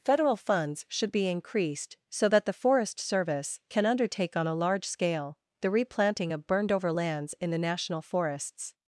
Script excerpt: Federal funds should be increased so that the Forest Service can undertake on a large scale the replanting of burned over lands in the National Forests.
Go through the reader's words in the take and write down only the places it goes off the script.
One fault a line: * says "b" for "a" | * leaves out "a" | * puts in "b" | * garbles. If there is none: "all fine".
all fine